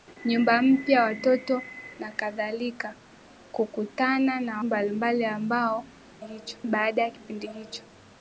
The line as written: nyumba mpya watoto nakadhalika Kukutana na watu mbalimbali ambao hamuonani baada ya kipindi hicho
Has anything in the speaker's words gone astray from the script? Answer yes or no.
yes